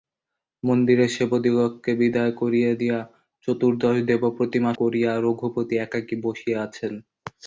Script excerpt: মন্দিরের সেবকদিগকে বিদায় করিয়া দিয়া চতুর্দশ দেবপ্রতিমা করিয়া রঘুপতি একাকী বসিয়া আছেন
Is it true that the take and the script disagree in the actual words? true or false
false